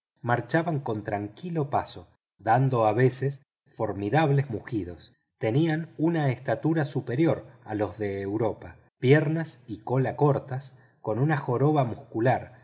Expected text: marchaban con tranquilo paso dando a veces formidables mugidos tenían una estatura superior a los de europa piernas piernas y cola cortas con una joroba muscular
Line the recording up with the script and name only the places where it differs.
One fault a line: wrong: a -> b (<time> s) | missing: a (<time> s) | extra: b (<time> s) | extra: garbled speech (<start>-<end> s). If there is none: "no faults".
missing: piernas (9.6 s)